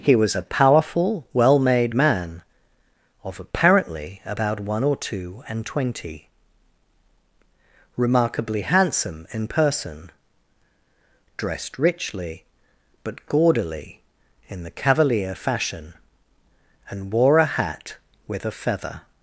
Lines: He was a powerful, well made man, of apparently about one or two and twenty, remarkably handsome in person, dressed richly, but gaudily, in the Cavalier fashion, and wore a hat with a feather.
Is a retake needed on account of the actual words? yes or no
no